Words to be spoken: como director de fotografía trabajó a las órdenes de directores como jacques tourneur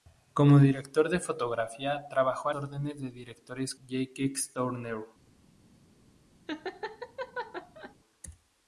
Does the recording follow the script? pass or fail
fail